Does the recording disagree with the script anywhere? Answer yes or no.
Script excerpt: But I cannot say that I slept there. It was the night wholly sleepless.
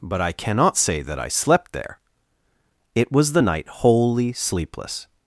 no